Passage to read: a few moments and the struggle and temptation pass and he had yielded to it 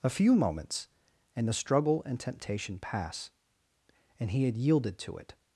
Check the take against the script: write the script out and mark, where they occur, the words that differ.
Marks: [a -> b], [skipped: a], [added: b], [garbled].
a few moments and the struggle and temptation pass and he had yielded to it